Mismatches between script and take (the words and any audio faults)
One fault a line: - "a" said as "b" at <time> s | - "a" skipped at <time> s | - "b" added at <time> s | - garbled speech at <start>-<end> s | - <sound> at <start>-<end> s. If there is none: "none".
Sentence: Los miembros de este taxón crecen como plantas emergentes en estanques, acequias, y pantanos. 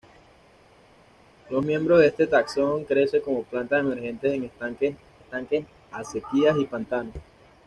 - "estanques" added at 5.2 s